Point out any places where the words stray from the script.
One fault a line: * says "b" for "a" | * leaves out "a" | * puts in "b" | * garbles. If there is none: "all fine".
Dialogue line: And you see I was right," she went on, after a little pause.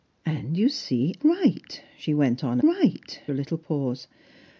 * leaves out "I was"
* says "right" for "after"